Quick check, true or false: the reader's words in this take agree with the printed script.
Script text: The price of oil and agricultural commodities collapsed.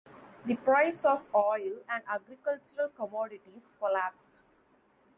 true